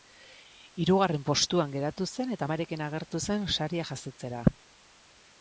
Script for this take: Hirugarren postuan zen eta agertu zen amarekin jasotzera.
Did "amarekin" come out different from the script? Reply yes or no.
yes